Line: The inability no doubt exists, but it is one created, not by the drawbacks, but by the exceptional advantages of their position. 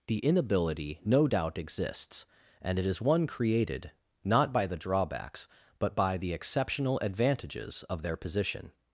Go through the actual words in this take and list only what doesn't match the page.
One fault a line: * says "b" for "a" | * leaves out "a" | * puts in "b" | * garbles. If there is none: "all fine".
* says "and" for "but"